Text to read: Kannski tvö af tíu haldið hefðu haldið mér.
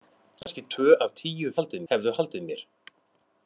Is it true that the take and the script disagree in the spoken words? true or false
false